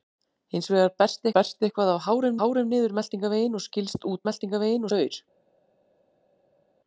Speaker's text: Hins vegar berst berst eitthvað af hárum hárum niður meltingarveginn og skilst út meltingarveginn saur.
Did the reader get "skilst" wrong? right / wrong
right